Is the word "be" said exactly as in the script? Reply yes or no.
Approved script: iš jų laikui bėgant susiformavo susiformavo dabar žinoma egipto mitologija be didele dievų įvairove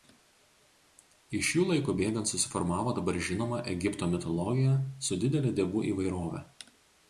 no